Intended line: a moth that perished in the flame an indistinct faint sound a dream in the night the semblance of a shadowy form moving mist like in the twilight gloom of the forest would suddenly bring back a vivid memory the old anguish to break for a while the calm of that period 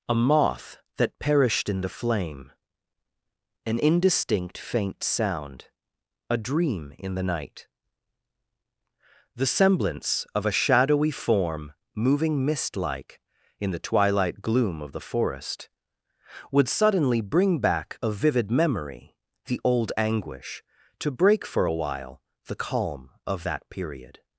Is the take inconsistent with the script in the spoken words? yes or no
no